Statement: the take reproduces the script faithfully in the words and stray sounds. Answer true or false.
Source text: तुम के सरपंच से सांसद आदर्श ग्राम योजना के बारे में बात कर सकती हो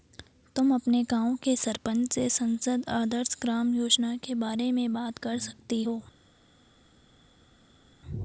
false